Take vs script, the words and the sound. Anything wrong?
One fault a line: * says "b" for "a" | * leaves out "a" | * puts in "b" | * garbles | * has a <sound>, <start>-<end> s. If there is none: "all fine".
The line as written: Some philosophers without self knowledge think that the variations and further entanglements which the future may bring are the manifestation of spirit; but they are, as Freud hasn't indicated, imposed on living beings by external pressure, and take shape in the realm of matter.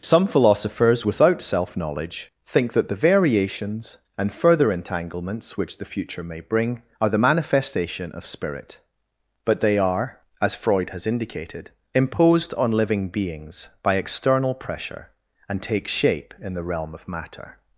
* says "has" for "hasn't"